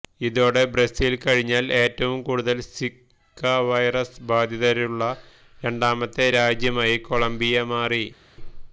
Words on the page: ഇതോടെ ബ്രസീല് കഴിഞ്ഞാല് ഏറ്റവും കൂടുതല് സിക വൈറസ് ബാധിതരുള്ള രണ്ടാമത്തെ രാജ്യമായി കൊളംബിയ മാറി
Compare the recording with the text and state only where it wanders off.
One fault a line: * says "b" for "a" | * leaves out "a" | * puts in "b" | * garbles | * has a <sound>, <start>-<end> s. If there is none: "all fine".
all fine